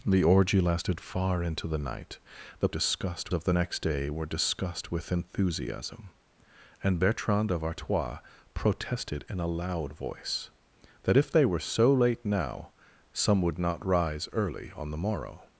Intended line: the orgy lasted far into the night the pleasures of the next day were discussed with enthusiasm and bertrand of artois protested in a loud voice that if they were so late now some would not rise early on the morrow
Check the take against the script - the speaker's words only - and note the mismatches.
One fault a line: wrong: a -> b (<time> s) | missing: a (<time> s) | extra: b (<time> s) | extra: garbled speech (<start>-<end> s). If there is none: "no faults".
wrong: pleasures -> discussed (2.7 s)